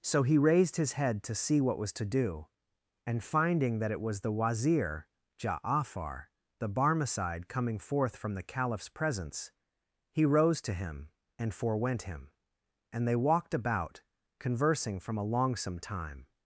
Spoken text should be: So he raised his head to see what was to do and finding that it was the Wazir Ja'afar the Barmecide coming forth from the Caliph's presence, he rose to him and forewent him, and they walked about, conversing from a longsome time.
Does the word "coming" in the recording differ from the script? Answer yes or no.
no